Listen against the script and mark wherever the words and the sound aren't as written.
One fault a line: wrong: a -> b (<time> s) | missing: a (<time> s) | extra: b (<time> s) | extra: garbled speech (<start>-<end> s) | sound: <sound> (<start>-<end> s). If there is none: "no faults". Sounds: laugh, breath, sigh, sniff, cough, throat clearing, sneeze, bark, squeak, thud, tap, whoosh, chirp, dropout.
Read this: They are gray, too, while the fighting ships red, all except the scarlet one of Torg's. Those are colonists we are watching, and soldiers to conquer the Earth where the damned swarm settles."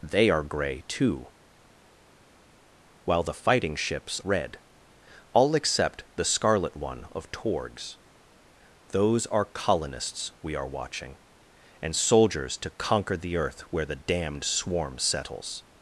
no faults